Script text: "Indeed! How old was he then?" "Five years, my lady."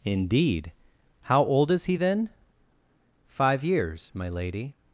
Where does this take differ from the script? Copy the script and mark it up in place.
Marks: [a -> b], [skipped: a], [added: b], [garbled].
"Indeed! How old [was -> is] he then?" "Five years, my lady."